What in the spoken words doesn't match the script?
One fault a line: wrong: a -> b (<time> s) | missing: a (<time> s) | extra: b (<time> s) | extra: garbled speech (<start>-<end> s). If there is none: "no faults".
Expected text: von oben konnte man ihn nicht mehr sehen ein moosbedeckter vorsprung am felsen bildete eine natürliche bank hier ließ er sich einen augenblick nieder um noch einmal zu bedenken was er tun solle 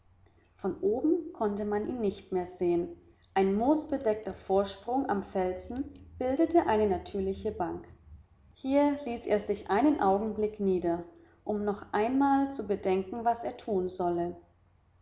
no faults